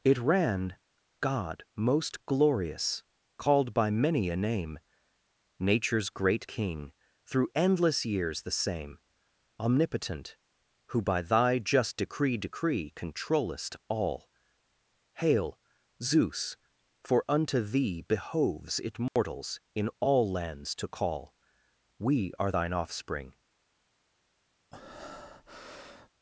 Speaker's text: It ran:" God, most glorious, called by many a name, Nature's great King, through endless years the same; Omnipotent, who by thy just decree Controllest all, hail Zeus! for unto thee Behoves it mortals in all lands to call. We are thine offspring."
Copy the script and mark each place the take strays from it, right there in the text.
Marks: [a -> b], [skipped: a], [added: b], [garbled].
It ran:" God, most glorious, called by many a name, Nature's great King, through endless years the same; Omnipotent, who by thy just decree [added: decree] Controllest all, hail Zeus! for unto thee Behoves it mortals in all lands to call. We are thine offspring."